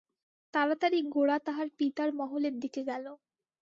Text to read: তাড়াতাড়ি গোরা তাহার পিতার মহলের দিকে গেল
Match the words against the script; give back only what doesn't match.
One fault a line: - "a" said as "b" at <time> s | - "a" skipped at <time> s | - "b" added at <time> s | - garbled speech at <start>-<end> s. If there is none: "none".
none